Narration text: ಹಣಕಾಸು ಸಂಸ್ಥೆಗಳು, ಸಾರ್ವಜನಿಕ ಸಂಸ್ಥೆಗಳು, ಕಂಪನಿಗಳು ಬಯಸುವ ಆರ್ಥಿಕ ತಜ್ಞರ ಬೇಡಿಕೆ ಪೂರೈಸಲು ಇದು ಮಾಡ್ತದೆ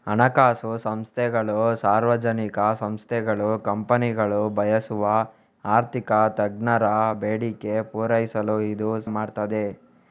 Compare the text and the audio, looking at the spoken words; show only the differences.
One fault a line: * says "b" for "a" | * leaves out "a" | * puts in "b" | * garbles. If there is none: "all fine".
all fine